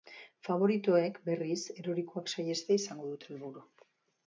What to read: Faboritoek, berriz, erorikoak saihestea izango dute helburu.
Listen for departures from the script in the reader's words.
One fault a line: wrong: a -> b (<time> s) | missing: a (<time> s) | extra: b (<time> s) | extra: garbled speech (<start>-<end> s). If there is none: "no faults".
no faults